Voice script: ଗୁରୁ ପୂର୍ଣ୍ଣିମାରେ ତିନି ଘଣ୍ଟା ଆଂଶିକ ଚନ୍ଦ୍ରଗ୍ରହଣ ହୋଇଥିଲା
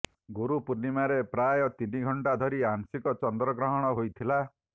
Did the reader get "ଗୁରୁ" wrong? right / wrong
right